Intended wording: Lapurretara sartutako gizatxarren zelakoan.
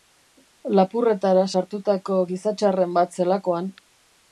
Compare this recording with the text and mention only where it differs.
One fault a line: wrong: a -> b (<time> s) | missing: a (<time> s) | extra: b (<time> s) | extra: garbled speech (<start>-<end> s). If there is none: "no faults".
extra: bat (3.0 s)